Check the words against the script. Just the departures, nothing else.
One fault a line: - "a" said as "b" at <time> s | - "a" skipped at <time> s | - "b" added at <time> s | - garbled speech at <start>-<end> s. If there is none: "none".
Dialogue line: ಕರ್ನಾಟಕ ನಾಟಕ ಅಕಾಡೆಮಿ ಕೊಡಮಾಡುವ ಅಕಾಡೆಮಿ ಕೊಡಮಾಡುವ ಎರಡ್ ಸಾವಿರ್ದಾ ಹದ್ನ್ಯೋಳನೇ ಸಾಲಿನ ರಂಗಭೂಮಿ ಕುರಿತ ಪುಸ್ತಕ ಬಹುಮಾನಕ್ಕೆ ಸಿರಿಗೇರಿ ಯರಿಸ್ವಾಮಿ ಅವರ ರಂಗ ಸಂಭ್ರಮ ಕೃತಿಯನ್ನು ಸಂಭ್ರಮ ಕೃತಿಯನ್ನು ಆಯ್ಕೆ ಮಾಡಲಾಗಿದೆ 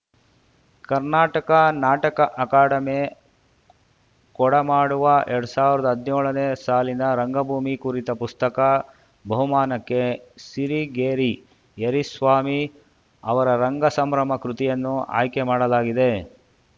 - "ಅಕಾಡೆಮಿ ಕೊಡಮಾಡುವ" skipped at 5.0 s
- "ಸಂಭ್ರಮ ಕೃತಿಯನ್ನು" skipped at 14.9 s